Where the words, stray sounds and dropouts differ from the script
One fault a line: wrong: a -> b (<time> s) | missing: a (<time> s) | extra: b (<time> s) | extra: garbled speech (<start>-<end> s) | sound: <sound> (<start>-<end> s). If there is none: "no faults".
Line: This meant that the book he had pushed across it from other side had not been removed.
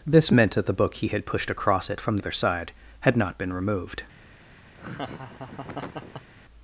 sound: laugh (4.8-6.3 s)